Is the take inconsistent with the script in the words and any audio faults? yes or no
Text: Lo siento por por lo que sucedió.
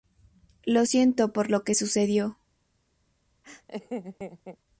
yes